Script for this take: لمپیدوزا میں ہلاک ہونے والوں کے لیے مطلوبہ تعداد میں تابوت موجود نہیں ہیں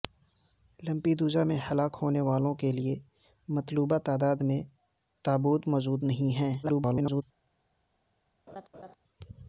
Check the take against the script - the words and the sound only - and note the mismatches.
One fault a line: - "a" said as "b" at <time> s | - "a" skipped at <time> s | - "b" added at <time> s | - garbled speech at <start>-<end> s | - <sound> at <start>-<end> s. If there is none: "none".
- garbled speech at 6.6-7.2 s
- laugh at 8.5-9.0 s